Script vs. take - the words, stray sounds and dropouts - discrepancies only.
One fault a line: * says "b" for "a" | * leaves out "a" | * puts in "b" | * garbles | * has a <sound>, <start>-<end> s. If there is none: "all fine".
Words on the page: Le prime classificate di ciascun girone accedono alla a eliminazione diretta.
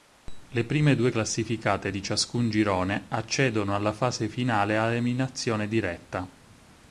* puts in "due"
* puts in "fase finale"